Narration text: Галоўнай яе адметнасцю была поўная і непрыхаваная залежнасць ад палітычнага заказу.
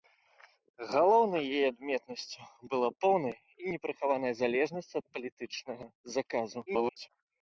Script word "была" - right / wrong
right